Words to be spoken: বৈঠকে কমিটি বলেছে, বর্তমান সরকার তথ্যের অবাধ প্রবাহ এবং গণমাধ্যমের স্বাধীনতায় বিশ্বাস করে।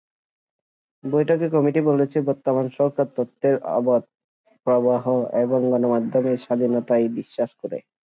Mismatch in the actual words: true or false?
false